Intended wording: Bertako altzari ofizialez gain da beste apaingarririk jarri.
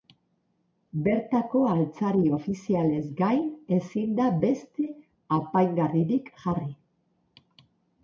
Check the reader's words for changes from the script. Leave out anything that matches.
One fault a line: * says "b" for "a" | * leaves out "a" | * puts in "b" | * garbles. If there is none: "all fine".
* puts in "ezin"